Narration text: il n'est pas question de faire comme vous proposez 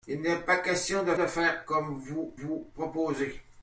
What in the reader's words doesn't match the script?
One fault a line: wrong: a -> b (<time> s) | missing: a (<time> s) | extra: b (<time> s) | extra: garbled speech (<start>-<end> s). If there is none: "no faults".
extra: de (1.1 s)
extra: vous (2.4 s)